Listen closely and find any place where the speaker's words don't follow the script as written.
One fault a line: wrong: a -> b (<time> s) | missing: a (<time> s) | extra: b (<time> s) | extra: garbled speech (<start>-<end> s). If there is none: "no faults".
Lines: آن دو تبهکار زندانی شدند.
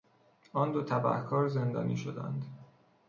no faults